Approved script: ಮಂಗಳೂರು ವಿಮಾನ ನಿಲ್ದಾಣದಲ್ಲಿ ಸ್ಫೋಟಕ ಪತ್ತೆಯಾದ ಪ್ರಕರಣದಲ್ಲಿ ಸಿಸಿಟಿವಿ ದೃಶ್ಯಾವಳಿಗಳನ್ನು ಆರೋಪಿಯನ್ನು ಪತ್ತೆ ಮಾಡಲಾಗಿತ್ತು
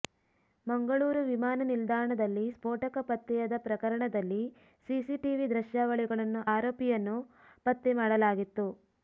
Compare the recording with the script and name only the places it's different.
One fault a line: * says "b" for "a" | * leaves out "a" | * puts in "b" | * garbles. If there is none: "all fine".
all fine